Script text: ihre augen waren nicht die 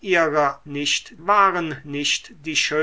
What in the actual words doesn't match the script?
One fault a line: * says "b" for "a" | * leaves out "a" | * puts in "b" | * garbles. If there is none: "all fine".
* says "nicht" for "augen"